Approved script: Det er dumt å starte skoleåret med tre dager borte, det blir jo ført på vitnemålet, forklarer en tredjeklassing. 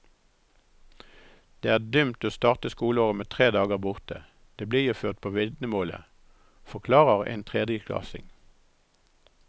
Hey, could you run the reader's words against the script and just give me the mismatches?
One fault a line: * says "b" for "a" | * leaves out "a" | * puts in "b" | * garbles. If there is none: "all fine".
all fine